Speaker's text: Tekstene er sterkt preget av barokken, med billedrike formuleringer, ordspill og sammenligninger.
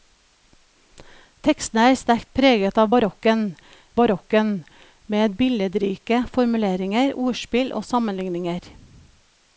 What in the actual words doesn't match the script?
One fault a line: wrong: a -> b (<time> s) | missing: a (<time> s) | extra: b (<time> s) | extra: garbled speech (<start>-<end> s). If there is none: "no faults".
extra: barokken (4.0 s)